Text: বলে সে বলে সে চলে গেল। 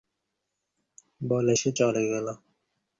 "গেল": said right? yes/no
yes